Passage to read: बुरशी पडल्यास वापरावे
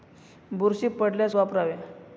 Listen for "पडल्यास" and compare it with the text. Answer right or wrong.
right